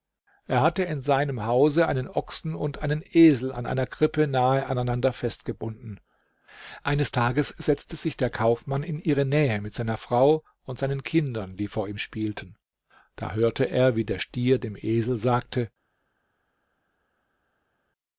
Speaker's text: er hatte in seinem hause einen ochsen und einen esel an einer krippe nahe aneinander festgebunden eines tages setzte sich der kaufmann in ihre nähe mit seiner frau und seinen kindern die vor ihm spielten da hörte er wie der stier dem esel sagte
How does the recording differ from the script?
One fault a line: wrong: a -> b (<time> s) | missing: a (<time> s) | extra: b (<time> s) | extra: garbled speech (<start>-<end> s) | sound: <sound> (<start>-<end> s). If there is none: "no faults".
no faults